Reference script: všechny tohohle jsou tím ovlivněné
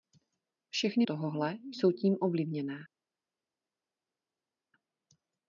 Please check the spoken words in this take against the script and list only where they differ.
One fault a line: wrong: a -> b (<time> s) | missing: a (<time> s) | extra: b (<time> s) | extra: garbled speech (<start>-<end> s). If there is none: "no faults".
no faults